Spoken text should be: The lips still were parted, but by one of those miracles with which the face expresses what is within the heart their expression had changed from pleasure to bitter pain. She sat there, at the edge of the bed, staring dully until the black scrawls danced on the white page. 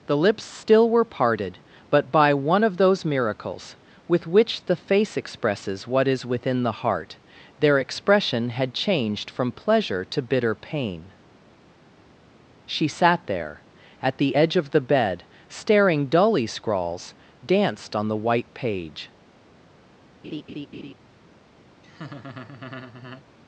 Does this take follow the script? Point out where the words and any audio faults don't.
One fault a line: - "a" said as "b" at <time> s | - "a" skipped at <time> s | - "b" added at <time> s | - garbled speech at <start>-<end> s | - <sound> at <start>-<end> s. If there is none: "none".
- "until the black" skipped at 16.5 s
- laugh at 20.2-20.9 s
- laugh at 21.8-23.2 s